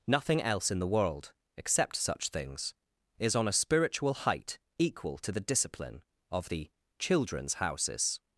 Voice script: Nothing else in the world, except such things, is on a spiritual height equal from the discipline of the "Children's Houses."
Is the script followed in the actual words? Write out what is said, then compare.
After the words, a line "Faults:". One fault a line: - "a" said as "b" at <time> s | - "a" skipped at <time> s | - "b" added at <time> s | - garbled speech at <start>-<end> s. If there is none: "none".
Nothing else in the world, except such things, is on a spiritual height equal to the discipline of the "Children's Houses."
Faults:
- "from" said as "to" at 5.2 s